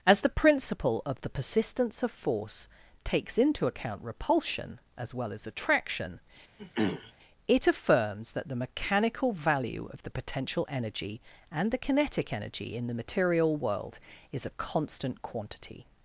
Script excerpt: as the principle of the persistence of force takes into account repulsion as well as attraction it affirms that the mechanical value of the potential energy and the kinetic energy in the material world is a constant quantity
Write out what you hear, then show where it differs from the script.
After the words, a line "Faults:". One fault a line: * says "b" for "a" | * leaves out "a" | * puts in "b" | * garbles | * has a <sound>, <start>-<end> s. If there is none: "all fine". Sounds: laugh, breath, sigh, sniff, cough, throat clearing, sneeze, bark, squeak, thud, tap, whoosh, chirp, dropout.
as the principle of the persistence of force takes into account repulsion as well as attraction it affirms that the mechanical value of the potential energy and the kinetic energy in the material world is a constant quantity
Faults:
* has a throat clearing, 6.6-7.1 s